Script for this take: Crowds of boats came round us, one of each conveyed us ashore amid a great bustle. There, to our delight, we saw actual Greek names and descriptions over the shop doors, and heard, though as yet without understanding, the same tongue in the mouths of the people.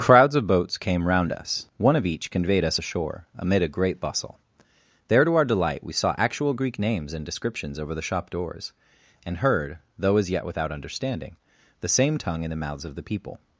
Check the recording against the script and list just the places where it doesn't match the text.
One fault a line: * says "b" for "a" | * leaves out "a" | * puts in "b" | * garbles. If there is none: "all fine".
all fine